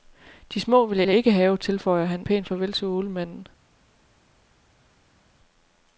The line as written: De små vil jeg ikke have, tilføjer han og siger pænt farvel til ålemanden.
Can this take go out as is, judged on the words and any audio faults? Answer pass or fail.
fail